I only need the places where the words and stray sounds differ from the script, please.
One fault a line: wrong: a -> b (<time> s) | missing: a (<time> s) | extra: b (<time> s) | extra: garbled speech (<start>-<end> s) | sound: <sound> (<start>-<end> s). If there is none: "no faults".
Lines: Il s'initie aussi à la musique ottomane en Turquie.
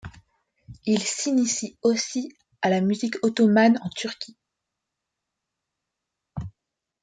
no faults